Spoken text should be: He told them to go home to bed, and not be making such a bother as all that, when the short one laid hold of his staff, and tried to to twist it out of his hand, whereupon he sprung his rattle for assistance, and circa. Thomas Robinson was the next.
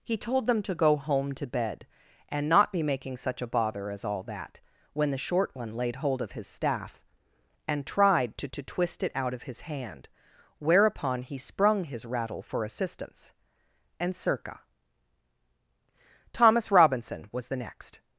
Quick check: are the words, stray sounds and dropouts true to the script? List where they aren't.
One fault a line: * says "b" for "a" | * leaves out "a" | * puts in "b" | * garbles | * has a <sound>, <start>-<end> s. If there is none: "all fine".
all fine